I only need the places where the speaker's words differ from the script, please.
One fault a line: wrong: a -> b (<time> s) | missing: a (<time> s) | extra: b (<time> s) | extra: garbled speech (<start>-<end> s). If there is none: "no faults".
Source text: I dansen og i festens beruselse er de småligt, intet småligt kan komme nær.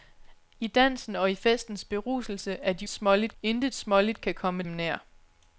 no faults